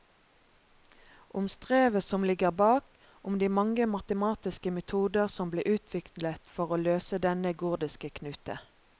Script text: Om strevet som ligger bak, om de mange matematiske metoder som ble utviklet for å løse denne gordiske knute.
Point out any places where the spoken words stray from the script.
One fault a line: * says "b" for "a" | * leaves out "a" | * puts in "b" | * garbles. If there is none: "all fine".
all fine